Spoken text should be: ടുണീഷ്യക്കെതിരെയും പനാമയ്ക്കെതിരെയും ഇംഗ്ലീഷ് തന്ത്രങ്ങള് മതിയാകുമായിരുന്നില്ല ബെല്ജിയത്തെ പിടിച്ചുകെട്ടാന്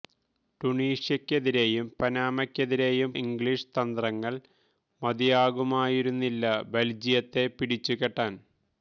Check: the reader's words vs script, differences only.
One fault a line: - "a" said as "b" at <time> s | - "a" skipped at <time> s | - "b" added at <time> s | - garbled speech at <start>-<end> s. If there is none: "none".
none